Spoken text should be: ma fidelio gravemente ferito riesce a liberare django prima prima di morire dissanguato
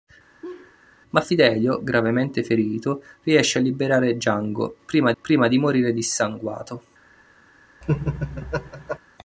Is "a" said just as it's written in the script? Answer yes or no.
yes